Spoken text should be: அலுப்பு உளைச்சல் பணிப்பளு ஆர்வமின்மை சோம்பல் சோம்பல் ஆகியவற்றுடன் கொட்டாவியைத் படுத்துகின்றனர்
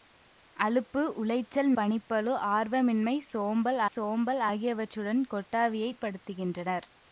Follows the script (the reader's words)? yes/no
yes